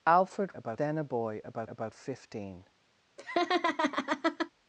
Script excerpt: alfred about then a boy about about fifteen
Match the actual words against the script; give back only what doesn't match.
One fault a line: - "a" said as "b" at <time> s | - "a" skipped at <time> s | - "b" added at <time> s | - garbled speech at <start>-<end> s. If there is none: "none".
none